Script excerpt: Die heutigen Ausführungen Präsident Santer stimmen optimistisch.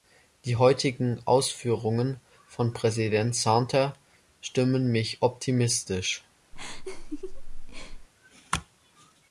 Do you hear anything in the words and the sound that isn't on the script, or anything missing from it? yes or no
yes